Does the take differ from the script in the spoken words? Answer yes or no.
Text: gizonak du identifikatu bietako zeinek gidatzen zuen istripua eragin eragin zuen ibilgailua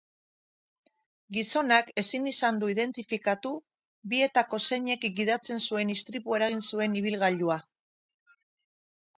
yes